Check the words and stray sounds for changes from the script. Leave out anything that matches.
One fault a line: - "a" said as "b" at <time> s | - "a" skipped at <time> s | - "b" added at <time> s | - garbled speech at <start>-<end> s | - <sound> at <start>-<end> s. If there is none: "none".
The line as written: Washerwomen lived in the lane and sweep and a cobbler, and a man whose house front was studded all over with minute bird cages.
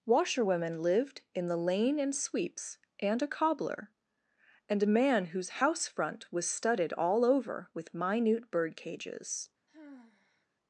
- "sweep" said as "sweeps" at 2.1 s
- sigh at 9.7-10.5 s